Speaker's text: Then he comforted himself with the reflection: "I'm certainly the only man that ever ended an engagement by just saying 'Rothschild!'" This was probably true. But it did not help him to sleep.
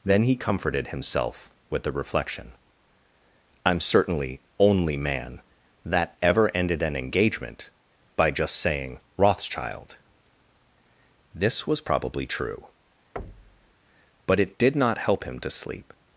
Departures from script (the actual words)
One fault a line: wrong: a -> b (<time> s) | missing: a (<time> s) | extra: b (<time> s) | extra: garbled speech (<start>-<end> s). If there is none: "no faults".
missing: the (4.4 s)